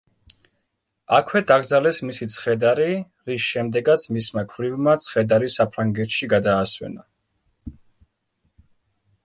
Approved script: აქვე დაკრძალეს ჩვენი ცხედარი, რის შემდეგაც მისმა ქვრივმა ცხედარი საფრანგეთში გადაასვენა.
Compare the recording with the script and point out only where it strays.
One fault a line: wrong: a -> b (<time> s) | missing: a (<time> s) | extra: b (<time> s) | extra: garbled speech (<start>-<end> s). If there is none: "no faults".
wrong: ჩვენი -> მისი (2.1 s)